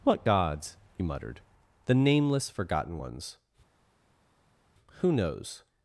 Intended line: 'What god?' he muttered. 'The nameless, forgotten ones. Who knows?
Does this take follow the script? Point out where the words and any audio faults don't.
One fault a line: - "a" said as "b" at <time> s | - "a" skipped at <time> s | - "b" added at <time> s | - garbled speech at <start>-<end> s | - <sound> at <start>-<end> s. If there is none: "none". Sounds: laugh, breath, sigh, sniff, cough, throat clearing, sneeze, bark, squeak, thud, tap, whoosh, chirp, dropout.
- "god" said as "gods" at 0.2 s